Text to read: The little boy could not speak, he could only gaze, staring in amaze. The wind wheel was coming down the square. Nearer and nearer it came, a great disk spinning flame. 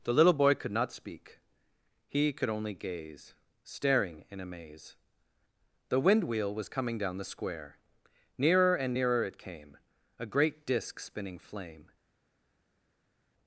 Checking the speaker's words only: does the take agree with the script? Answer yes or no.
yes